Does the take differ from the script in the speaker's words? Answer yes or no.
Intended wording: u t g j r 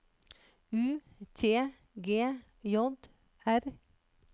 no